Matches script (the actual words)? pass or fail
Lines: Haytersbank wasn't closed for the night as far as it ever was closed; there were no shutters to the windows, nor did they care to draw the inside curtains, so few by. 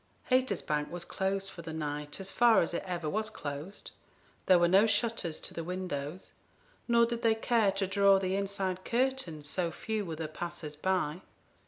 fail